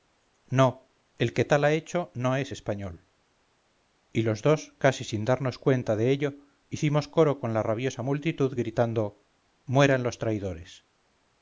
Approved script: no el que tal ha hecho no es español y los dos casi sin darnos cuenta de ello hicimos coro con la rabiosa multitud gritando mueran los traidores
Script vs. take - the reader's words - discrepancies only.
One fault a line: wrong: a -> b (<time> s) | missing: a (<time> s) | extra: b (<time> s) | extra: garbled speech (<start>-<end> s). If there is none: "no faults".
no faults